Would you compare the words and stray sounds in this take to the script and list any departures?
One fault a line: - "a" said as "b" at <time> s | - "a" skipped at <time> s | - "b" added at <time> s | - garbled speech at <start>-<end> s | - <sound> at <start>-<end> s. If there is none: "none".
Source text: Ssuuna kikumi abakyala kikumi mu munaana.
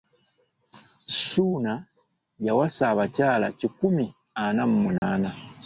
- "kikumi" said as "yawasa" at 2.5 s
- "ana" added at 4.4 s
- dropout at 5.0-5.0 s